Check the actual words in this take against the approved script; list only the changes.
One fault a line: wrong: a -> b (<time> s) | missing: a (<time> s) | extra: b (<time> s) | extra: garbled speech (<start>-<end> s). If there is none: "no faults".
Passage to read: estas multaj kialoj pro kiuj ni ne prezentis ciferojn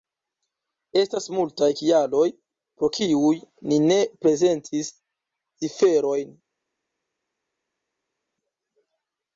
no faults